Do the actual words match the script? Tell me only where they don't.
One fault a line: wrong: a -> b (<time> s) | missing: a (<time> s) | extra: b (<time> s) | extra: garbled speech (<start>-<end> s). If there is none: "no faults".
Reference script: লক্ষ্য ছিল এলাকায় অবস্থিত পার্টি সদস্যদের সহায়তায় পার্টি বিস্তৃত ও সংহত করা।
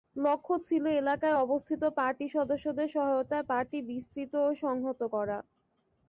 no faults